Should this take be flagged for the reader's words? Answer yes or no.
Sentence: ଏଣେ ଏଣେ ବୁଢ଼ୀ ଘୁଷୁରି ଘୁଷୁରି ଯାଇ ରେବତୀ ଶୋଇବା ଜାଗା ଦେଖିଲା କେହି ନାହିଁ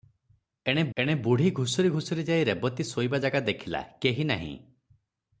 no